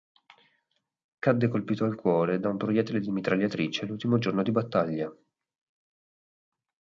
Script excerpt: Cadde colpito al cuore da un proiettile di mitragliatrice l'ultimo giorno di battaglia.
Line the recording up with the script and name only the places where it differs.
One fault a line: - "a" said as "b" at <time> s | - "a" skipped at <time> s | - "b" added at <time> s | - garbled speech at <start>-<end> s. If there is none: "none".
none